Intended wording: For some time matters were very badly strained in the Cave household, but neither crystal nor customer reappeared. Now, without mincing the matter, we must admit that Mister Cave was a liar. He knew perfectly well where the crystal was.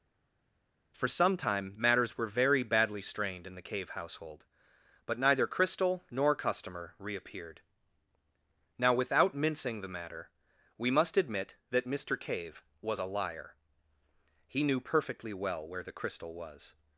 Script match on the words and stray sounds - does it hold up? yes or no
yes